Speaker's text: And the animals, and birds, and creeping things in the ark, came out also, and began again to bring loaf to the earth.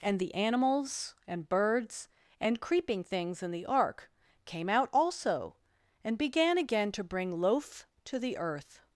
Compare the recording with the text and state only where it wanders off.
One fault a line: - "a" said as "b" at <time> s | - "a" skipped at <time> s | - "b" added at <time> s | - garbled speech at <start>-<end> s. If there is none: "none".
none